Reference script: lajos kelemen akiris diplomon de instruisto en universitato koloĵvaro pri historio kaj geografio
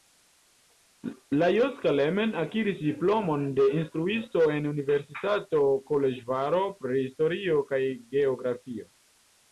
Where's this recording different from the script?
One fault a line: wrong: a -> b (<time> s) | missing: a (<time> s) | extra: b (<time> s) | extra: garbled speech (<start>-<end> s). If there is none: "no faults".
no faults